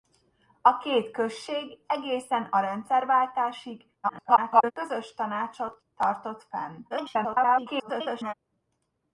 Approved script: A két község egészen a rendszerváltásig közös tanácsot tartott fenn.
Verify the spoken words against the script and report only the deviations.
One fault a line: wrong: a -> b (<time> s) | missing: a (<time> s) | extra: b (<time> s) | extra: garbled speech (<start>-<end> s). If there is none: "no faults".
extra: garbled speech (4.0-4.7 s)
extra: garbled speech (6.9-8.3 s)